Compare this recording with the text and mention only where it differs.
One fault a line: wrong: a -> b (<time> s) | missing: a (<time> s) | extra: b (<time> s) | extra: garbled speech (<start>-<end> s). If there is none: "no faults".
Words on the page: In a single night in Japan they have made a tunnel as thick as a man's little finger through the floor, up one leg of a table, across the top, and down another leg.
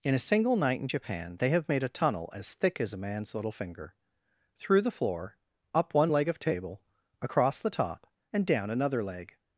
missing: a (6.4 s)